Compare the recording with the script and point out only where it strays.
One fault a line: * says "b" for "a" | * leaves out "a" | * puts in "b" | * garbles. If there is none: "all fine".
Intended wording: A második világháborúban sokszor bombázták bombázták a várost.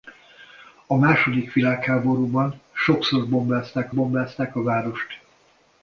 all fine